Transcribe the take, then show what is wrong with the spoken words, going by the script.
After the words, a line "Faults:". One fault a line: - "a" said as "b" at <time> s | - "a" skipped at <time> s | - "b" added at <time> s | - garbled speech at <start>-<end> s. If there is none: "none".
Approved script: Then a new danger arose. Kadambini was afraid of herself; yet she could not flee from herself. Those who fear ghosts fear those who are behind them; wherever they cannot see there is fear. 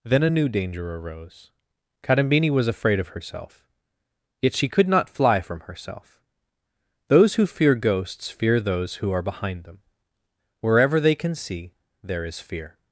Then a new danger arose. Kadambini was afraid of herself; yet she could not fly from herself. Those who fear ghosts fear those who are behind them; wherever they can see there is fear.
Faults:
- "flee" said as "fly" at 5.1 s
- "cannot" said as "can" at 11.2 s